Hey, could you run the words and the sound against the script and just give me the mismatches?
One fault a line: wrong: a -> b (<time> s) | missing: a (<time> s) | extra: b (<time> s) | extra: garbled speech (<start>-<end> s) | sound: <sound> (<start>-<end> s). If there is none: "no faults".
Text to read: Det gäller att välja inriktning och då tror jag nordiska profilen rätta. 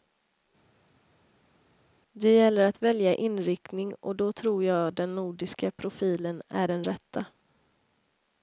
extra: den (4.9 s)
extra: är den (6.5 s)